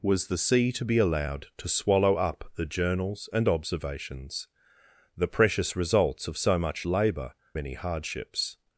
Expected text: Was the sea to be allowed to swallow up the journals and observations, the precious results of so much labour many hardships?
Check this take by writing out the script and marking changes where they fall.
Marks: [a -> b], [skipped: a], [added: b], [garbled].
Was the sea to be allowed to swallow up the journals and observations, the precious results of so much labour many hardships?